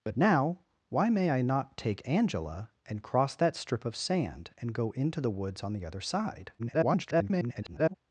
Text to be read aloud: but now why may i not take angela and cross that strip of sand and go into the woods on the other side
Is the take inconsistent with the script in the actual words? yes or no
yes